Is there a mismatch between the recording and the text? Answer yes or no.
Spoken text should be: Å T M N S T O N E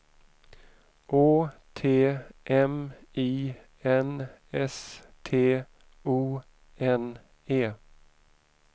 yes